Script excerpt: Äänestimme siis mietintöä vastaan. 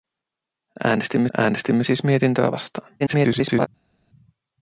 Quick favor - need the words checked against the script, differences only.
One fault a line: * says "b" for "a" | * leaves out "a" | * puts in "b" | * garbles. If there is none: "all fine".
* puts in "äänestimme"
* garbles